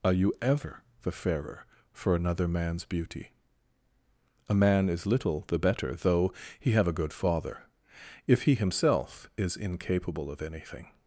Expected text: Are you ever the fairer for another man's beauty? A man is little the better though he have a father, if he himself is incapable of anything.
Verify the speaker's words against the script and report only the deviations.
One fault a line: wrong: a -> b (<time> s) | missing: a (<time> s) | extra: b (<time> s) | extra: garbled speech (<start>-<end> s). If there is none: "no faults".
extra: good (6.9 s)